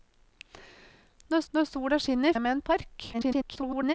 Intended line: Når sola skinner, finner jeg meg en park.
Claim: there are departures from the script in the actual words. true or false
true